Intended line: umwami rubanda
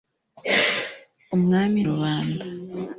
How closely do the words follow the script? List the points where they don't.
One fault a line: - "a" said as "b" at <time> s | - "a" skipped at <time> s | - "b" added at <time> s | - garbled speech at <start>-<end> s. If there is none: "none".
none